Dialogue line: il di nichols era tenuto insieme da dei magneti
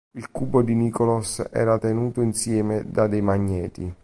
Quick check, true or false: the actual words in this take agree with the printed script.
false